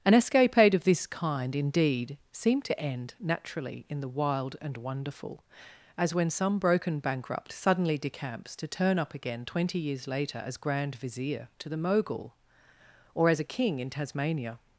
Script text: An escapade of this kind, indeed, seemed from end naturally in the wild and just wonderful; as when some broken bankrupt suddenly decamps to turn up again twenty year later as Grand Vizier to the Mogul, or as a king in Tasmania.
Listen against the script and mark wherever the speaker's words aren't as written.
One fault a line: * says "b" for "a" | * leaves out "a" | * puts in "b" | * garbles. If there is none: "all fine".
* says "to" for "from"
* leaves out "just"
* says "years" for "year"